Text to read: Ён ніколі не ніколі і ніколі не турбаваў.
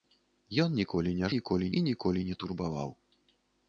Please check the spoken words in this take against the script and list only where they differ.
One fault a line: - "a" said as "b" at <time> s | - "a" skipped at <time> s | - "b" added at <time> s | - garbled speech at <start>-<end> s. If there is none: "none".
none